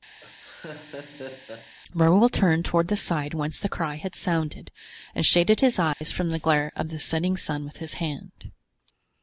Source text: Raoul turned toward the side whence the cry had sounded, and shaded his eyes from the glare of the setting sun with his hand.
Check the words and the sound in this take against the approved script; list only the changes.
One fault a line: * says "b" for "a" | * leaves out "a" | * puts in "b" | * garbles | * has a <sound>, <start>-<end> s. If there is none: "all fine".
* has a laugh, 0.2-1.7 s
* has a dropout, 5.9-6.0 s